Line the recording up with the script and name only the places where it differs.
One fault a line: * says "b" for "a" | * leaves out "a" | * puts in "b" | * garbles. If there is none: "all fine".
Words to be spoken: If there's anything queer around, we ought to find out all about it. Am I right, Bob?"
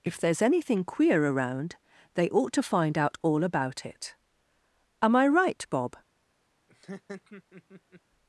* says "they" for "we"